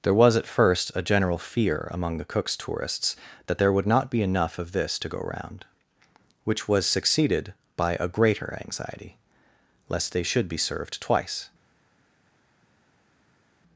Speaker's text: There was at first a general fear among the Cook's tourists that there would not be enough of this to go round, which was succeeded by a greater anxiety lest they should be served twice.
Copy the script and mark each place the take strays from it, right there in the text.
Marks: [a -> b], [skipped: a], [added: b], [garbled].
There was at first a general fear among the Cook's tourists that there would not be enough of this to go round, which was succeeded by a greater anxiety lest they should be served twice.